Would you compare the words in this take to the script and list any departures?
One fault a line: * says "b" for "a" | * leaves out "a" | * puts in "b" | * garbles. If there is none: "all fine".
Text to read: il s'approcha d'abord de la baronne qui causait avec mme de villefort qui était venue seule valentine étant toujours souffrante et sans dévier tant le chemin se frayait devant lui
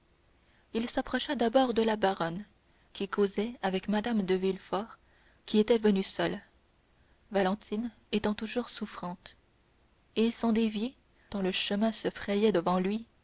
all fine